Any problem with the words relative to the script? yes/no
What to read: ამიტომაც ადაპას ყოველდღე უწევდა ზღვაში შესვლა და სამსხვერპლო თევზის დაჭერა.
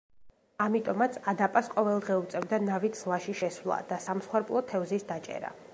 yes